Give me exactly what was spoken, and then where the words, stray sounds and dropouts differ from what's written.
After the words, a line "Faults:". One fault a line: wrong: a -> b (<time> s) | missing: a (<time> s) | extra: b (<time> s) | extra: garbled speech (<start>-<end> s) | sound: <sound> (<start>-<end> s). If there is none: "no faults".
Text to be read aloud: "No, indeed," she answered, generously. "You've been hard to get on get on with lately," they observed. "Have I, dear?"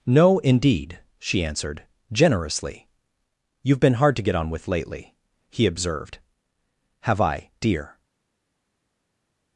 "No, indeed," she answered, generously. "You've been hard to get on with lately," he observed. "Have I, dear?"
Faults:
missing: get on (4.5 s)
wrong: they -> he (5.5 s)